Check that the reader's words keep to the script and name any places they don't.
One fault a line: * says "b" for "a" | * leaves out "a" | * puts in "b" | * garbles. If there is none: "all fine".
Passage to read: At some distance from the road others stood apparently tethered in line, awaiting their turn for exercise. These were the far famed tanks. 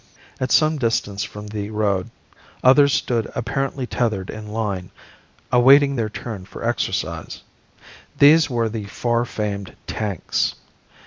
all fine